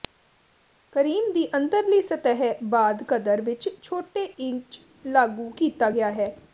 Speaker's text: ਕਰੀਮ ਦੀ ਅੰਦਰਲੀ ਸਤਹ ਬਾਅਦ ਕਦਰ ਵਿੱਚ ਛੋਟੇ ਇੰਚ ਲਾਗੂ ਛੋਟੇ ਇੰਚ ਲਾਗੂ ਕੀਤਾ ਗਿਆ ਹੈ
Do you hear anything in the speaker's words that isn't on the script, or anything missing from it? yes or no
yes